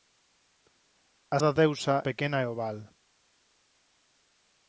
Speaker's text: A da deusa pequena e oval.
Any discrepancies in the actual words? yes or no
no